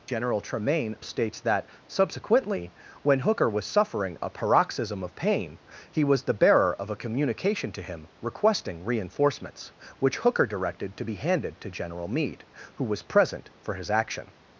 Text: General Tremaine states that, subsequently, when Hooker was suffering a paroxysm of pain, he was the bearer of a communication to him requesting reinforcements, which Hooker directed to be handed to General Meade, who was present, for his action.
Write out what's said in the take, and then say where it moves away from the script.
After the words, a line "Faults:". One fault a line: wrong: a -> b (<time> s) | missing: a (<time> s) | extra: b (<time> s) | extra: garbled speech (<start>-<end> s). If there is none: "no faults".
General Tremaine states that, subsequently, when Hooker was suffering a paroxysm of pain, he was the bearer of a communication to him requesting reinforcements, which Hooker directed to be handed to General Meade, who was present, for his action.
Faults:
no faults